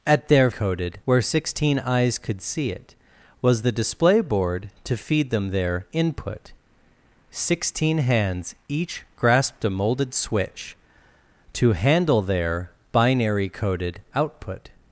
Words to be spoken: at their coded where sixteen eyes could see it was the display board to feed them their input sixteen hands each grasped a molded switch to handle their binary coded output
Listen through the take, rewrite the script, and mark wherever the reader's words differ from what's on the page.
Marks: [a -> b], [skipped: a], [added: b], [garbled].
at their coded where sixteen eyes could see it was the display board to feed them their input sixteen hands each grasped a molded switch to handle their binary coded output